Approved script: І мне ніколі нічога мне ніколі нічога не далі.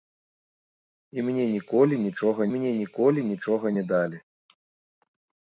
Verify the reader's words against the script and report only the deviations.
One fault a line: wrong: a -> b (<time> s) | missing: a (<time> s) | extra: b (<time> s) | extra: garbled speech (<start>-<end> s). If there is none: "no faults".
no faults